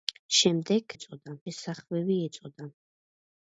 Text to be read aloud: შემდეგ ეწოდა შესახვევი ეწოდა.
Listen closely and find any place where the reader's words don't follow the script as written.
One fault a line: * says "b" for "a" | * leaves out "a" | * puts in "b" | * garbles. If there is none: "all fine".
all fine